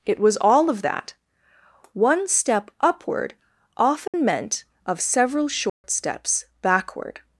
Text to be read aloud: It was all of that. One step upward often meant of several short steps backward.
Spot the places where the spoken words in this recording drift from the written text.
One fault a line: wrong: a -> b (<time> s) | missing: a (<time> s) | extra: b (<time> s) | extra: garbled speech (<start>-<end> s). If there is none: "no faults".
no faults